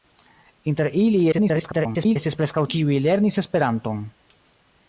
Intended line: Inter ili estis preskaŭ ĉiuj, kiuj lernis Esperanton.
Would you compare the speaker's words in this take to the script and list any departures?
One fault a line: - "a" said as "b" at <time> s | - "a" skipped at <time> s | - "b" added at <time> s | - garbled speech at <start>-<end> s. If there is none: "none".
- garbled speech at 1.3-2.2 s
- "ĉiuj" skipped at 2.7 s